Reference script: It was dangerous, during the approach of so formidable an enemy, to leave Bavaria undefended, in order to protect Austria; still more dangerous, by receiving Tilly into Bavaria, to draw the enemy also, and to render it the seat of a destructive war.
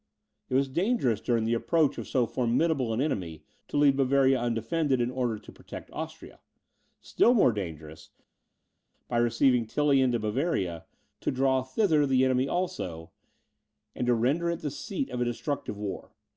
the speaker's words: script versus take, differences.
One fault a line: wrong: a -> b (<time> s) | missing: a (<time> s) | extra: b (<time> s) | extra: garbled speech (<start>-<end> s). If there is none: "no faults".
extra: thither (11.6 s)